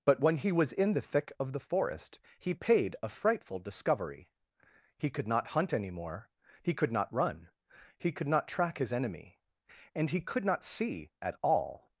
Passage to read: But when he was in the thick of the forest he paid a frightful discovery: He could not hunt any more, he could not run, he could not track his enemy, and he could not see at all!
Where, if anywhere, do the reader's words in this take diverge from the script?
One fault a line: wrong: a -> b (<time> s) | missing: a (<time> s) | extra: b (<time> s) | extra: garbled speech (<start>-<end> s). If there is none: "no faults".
no faults